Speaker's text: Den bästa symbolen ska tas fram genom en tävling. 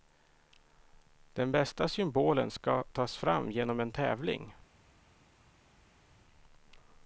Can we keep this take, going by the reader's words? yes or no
yes